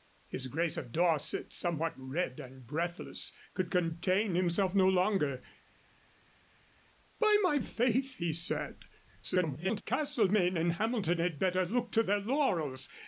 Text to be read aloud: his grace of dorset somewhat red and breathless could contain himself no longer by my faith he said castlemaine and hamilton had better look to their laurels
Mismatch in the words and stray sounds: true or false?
true